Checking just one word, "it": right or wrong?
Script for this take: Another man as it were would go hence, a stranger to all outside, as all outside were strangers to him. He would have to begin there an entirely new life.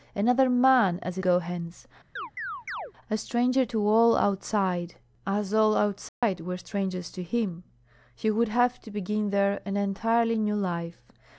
wrong